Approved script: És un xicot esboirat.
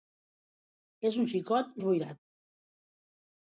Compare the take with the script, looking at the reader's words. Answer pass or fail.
pass